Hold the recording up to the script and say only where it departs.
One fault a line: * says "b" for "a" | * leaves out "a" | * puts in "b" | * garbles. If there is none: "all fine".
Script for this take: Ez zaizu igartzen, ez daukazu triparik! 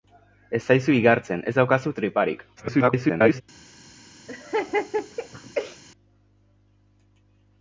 * garbles